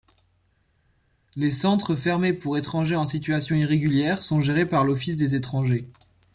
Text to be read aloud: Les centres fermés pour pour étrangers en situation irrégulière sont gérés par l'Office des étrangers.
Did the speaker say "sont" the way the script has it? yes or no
yes